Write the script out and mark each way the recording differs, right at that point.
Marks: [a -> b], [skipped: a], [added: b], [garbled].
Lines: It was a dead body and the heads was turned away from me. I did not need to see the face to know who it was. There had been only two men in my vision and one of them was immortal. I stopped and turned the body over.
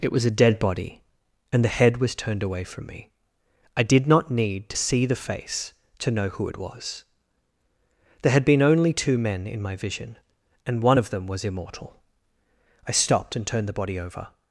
It was a dead body and the [heads -> head] was turned away from me. I did not need to see the face to know who it was. There had been only two men in my vision and one of them was immortal. I stopped and turned the body over.